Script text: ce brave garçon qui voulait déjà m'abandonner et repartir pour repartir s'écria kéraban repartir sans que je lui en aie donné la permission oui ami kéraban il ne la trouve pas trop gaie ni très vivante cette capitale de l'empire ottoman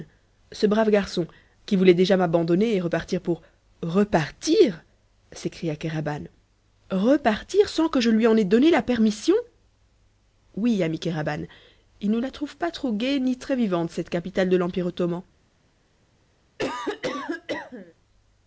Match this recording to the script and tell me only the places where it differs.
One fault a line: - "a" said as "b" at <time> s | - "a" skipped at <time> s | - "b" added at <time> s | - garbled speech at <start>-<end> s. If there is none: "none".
none